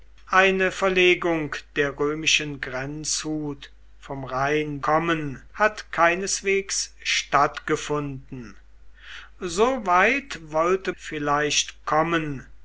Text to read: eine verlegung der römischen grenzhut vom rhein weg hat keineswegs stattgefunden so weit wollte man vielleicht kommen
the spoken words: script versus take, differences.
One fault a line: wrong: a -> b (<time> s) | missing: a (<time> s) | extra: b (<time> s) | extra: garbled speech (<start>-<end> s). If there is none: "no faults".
wrong: weg -> kommen (4.8 s)
missing: man (10.9 s)